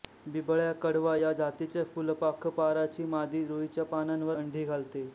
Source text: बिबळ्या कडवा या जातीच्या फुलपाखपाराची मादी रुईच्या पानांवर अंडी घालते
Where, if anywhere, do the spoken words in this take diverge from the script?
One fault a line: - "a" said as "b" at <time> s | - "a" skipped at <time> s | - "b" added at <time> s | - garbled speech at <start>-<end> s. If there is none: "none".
none